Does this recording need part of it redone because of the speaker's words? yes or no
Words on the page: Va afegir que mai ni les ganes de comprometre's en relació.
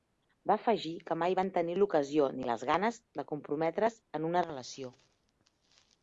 yes